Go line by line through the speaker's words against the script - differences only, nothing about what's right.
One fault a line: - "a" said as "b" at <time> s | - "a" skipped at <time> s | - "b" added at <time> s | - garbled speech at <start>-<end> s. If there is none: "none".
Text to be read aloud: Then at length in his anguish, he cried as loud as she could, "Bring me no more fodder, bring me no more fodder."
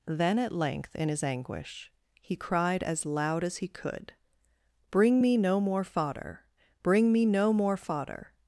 - "she" said as "he" at 3.6 s